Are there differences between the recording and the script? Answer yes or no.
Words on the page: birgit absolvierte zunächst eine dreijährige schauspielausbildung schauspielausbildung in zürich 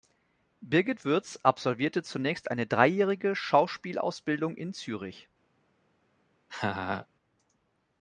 yes